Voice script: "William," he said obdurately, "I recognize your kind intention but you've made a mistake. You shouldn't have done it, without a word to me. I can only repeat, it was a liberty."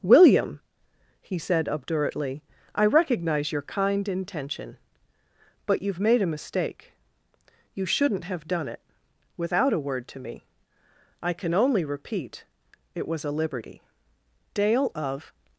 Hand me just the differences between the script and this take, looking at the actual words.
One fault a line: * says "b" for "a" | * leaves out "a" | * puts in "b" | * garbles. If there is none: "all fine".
* puts in "Dale of"